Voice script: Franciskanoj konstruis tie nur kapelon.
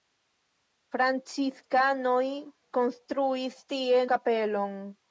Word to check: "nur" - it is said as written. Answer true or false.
false